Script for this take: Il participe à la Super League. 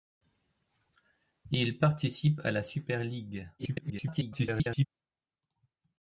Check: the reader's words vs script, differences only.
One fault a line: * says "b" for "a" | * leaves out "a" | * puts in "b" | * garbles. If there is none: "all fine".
* garbles